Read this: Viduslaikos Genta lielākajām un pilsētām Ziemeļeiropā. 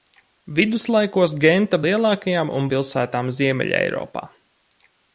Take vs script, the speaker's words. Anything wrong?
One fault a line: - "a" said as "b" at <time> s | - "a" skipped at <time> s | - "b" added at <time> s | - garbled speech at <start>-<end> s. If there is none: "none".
none